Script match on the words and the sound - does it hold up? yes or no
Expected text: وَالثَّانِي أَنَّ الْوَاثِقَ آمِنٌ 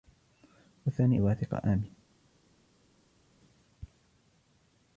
no